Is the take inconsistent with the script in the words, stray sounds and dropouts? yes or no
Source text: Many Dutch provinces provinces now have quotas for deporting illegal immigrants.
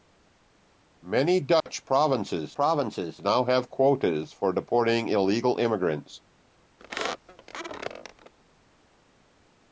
yes